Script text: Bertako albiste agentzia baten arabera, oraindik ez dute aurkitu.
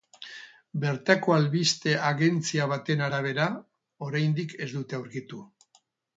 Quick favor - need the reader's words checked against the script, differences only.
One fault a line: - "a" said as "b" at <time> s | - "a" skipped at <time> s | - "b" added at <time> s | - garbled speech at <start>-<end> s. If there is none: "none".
none